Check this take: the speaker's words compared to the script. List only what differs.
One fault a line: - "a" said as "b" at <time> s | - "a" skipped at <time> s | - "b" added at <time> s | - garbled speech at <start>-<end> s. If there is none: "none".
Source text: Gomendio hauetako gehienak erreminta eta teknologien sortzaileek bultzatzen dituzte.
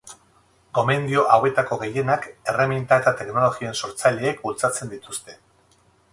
none